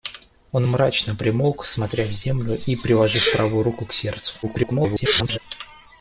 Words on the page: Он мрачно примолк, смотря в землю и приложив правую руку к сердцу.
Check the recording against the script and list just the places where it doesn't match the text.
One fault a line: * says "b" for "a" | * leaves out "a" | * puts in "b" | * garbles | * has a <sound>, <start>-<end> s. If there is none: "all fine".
* garbles